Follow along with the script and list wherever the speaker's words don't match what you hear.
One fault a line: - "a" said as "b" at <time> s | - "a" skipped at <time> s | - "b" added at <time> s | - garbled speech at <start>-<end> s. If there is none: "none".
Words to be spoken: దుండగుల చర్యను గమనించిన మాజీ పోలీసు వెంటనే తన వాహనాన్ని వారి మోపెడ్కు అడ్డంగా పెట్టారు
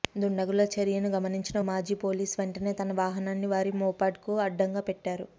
none